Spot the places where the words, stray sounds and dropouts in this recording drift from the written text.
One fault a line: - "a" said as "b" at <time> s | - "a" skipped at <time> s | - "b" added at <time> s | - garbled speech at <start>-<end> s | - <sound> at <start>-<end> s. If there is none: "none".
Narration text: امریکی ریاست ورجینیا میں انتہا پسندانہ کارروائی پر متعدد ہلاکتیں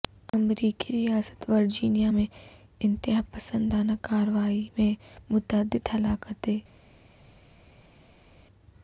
- "پر" said as "میں" at 4.8 s